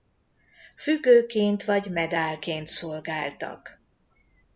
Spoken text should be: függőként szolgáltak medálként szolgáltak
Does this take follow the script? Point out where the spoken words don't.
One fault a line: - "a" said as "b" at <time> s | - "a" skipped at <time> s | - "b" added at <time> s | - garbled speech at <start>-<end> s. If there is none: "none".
- "szolgáltak" said as "vagy" at 1.6 s